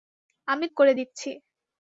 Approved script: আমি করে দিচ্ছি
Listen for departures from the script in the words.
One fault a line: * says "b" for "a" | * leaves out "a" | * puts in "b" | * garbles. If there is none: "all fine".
all fine